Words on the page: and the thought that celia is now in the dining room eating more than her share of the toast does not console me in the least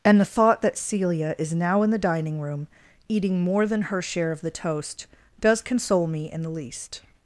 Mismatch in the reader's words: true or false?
true